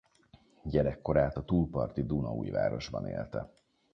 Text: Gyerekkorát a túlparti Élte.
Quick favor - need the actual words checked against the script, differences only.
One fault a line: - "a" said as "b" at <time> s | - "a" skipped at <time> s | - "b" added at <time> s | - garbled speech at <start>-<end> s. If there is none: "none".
- "Dunaújvárosban" added at 2.0 s